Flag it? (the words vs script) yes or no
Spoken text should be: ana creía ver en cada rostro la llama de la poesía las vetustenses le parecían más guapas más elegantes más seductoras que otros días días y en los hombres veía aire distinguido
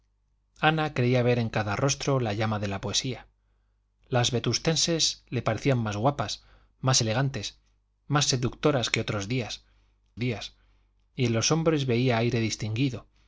no